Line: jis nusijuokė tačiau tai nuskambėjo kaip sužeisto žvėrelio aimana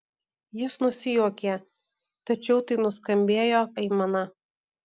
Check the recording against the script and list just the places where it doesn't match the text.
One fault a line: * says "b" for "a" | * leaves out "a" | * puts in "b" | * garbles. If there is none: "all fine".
* leaves out "kaip sužeisto žvėrelio"